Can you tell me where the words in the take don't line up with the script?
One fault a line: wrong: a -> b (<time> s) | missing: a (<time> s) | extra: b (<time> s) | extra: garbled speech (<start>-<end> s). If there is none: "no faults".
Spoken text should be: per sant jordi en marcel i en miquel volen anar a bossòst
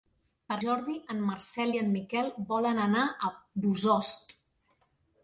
missing: sant (0.6 s)